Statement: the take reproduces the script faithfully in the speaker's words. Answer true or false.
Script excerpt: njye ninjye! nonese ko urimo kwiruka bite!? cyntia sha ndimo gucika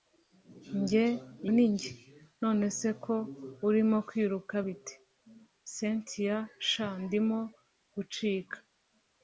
true